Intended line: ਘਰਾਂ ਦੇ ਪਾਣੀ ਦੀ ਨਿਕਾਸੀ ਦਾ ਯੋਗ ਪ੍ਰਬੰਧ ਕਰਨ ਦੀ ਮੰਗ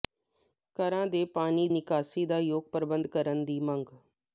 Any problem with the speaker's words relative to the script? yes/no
yes